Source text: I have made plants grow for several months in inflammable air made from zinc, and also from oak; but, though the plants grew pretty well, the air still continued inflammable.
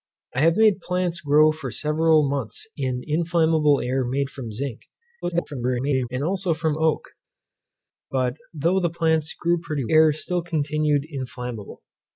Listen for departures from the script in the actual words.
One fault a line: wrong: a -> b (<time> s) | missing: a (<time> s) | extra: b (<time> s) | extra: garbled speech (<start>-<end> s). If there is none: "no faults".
extra: garbled speech (5.2-6.1 s)
missing: well the (9.9 s)